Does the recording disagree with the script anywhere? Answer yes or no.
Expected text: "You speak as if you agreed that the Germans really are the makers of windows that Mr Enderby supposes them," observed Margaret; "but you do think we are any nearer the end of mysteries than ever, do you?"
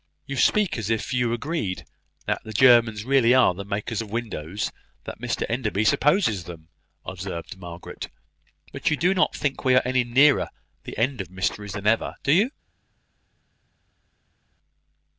yes